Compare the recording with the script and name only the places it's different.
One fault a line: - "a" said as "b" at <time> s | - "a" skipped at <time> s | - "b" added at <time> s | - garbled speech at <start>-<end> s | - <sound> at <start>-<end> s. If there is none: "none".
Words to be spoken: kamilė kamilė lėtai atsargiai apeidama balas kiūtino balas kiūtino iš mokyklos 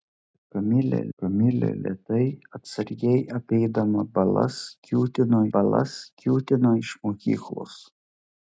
none